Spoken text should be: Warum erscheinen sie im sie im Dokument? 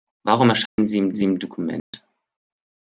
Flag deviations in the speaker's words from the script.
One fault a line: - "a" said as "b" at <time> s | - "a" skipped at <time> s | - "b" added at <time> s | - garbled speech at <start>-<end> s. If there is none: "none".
none